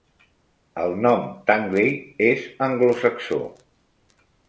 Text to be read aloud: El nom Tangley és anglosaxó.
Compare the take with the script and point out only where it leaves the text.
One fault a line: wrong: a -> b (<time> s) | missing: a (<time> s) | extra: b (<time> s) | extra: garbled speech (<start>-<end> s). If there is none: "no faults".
no faults